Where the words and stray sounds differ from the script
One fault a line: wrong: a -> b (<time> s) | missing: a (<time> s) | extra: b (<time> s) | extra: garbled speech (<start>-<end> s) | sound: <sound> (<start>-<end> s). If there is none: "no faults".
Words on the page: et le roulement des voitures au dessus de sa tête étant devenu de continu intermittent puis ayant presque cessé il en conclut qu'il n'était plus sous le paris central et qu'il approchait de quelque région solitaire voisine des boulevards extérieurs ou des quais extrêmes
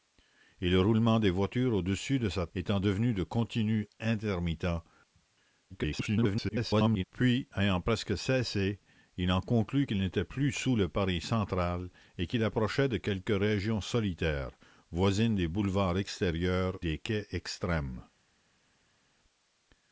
missing: tête (2.5 s)
extra: garbled speech (5.7-7.0 s)
missing: ou (16.8 s)